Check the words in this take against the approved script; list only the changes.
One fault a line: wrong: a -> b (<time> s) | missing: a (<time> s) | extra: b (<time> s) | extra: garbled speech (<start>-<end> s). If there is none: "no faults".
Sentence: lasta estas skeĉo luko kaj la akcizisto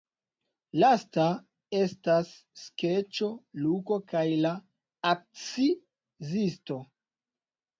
no faults